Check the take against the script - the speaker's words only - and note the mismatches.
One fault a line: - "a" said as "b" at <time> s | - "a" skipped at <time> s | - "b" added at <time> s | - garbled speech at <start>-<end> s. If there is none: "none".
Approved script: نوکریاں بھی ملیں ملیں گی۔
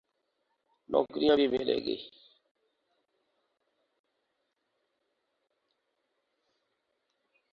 - "ملیں" skipped at 1.8 s